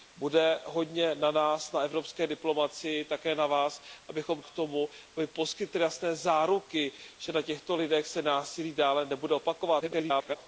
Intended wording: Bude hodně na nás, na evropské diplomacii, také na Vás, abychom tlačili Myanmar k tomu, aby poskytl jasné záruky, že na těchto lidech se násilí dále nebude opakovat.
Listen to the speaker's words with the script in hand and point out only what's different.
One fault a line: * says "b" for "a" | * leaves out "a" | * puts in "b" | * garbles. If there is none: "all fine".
* leaves out "tlačili Myanmar"
* garbles